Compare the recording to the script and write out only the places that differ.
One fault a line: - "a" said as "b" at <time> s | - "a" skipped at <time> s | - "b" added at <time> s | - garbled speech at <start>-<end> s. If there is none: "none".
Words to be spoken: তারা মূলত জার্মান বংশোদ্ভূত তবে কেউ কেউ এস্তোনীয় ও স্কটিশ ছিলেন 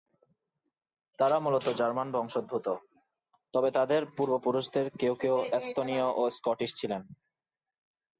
- "তাদের পূর্বপুরুষদের" added at 3.7 s